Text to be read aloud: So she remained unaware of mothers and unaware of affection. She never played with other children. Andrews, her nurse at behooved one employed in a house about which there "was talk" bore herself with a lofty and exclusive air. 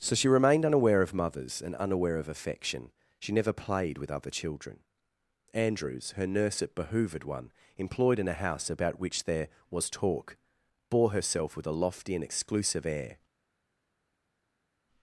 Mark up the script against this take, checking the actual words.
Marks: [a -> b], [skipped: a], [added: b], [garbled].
So she remained unaware of mothers and unaware of affection. She never played with other children. Andrews, her nurse at behooved one employed in a house about which there "was talk" bore herself with a lofty and exclusive air.